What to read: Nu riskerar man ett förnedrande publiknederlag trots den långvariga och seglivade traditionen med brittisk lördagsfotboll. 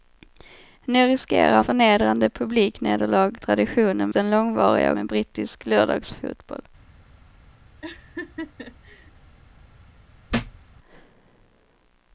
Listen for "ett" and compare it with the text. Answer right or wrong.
wrong